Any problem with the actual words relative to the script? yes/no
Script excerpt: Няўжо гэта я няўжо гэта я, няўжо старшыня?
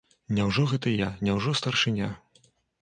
yes